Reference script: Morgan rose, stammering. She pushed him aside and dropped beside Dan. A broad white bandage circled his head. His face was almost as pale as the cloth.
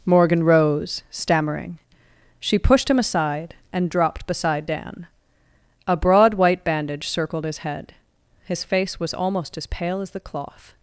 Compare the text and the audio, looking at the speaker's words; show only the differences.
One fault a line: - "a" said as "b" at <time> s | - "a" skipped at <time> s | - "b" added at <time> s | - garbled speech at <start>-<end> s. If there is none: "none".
none